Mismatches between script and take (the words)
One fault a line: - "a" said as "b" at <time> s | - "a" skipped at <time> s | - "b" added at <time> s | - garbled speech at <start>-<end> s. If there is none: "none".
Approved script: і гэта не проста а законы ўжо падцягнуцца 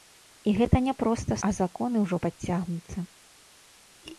none